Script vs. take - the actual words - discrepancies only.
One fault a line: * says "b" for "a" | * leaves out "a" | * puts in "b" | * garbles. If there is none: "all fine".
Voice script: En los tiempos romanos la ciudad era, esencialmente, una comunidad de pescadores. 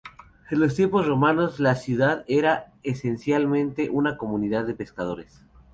all fine